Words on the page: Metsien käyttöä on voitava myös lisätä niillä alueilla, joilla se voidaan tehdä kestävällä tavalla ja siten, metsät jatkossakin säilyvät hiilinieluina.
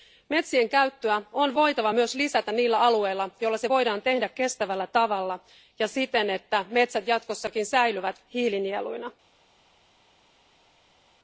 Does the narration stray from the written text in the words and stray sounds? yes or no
yes